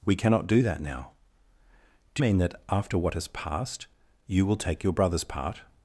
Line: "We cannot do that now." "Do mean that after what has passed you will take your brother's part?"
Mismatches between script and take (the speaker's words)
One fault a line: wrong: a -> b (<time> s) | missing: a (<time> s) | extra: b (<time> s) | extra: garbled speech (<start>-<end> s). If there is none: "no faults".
no faults